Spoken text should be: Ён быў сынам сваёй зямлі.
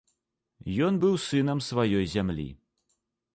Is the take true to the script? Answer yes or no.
yes